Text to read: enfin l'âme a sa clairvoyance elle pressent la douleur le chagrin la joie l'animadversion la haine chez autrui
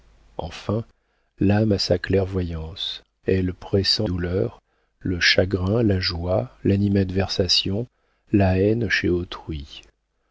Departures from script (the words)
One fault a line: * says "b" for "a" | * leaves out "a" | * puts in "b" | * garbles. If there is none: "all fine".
* leaves out "la"